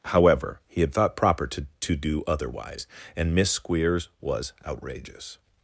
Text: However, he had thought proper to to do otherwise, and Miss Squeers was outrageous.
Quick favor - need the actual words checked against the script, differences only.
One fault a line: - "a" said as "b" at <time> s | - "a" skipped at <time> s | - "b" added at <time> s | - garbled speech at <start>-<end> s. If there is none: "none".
none